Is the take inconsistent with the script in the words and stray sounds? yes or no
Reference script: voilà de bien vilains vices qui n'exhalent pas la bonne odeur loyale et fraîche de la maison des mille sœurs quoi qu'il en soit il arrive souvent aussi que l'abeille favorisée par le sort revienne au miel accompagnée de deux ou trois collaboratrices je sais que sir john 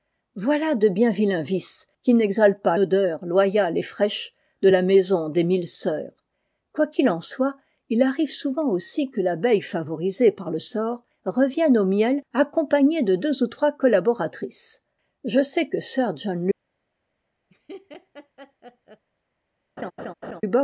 yes